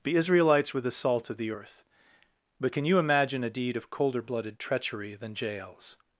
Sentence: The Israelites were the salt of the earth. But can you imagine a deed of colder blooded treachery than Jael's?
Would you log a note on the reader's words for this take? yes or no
no